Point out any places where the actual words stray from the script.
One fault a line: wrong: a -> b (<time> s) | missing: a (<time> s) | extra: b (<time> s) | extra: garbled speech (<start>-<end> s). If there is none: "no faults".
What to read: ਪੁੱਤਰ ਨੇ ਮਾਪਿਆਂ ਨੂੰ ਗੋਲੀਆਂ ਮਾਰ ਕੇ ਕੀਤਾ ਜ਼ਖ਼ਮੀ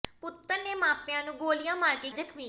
missing: ਕੀਤਾ (2.1 s)